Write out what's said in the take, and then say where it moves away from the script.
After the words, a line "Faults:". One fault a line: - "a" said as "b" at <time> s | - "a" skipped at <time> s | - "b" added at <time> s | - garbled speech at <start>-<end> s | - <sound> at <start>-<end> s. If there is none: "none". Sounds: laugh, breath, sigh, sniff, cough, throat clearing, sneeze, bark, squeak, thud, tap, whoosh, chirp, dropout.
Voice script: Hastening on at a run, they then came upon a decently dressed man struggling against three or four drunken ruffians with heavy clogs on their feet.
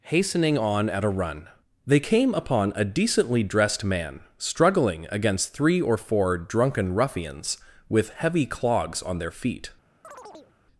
Hastening on at a run, they came upon a decently dressed man struggling against three or four drunken ruffians with heavy clogs on their feet.
Faults:
- "then" skipped at 2.0 s
- chirp at 10.0-10.5 s